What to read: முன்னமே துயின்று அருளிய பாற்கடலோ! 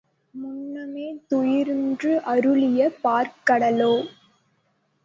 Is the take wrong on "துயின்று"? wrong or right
right